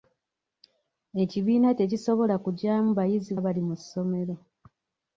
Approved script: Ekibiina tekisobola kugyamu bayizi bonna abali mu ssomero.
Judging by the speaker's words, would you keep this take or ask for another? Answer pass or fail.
fail